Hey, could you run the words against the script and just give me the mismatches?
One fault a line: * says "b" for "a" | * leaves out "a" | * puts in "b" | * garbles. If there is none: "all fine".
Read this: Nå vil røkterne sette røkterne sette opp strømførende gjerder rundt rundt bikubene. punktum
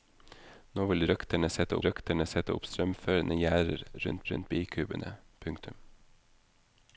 all fine